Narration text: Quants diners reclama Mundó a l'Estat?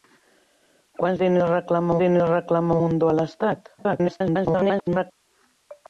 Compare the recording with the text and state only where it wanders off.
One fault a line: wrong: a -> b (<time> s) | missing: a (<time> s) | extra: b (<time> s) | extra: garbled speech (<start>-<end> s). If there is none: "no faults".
extra: diners reclama (2.0 s)
extra: garbled speech (3.8-5.1 s)